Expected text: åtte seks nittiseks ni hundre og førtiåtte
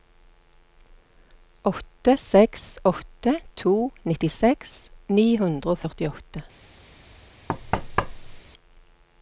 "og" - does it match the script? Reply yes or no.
yes